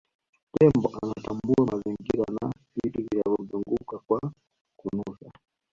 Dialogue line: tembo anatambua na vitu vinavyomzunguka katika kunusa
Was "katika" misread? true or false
true